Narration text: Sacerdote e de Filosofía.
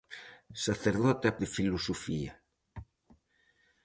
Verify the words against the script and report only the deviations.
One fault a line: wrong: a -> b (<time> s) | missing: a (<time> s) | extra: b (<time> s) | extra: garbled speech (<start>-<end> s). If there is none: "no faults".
no faults